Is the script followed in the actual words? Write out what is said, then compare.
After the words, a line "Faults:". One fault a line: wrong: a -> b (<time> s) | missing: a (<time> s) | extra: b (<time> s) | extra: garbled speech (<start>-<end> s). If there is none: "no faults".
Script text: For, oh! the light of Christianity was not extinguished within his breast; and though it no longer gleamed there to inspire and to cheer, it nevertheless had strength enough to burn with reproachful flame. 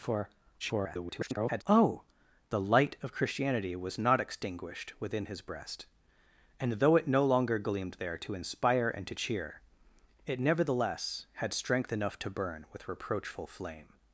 For, [garbled] oh! the light of Christianity was not extinguished within his breast; and though it no longer gleamed there to inspire and to cheer, it nevertheless had strength enough to burn with reproachful flame.
Faults:
extra: garbled speech (0.6-1.6 s)